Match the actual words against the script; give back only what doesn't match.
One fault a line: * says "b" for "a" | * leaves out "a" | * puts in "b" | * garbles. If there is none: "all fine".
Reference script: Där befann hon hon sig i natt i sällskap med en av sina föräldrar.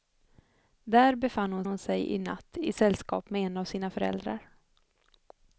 all fine